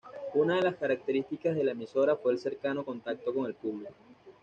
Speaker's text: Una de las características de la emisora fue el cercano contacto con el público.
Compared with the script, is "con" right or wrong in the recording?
right